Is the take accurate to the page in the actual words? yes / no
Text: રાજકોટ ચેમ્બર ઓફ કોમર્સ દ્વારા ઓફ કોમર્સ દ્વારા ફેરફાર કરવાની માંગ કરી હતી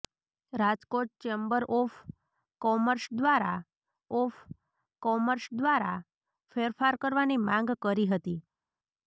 yes